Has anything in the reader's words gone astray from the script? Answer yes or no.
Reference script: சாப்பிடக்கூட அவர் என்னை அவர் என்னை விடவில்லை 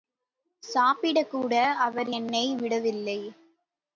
yes